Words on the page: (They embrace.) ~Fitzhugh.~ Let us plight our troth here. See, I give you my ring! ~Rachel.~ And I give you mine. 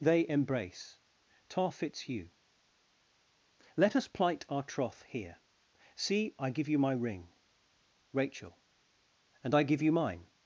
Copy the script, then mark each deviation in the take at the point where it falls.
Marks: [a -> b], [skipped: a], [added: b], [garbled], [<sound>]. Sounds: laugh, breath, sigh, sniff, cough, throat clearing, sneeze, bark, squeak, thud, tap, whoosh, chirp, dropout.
(They embrace.) [added: tar] ~Fitzhugh.~ Let us plight our troth here. See, I give you my ring! ~Rachel.~ And I give you mine.